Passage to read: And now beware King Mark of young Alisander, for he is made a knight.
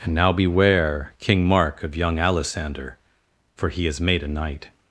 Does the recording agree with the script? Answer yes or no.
yes